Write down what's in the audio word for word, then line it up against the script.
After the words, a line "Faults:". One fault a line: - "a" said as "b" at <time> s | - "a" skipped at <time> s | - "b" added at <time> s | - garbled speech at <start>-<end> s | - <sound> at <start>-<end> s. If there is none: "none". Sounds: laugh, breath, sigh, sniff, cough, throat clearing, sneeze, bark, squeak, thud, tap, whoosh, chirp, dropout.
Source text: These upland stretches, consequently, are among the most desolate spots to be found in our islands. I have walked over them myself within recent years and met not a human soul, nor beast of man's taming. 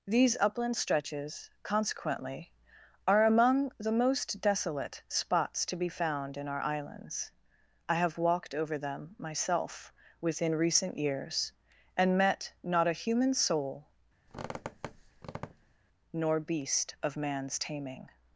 These upland stretches, consequently, are among the most desolate spots to be found in our islands. I have walked over them myself within recent years and met not a human soul, nor beast of man's taming.
Faults:
- squeak at 14.3-15.8 s